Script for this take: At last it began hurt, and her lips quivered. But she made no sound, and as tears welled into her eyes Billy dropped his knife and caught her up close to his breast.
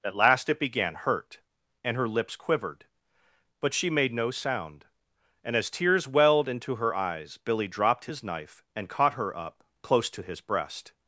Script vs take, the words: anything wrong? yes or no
no